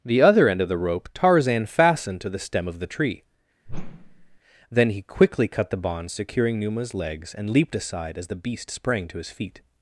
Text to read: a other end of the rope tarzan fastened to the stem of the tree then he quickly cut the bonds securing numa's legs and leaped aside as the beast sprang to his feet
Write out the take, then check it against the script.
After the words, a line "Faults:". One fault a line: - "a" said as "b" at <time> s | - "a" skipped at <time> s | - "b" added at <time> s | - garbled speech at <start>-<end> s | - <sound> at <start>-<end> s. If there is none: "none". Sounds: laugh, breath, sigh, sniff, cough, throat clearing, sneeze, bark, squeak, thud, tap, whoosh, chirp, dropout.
the other end of the rope tarzan fastened to the stem of the tree then he quickly cut the bonds securing numa's legs and leaped aside as the beast sprang to his feet
Faults:
- "a" said as "the" at 0.0 s
- whoosh at 3.7-4.4 s